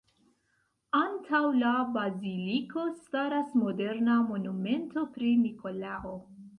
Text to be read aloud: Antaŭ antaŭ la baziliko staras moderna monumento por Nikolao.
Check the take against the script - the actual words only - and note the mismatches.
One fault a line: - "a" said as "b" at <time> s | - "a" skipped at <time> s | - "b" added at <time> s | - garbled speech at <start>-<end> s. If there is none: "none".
- "antaŭ" skipped at 1.4 s
- "por" said as "pri" at 5.2 s